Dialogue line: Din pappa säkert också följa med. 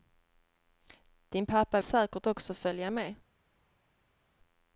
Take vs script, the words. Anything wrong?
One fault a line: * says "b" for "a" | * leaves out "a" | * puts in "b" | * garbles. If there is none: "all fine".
all fine